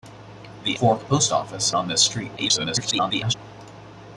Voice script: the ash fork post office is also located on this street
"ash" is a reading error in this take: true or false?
true